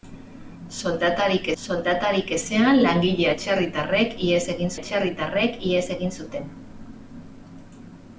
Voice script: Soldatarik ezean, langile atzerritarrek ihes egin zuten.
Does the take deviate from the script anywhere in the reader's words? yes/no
yes